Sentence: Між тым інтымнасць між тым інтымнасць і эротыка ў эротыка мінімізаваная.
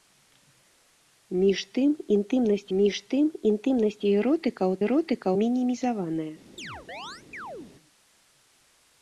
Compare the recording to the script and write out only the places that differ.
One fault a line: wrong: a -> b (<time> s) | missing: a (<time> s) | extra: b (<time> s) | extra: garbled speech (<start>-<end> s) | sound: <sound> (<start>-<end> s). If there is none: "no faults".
sound: chirp (6.6-7.7 s)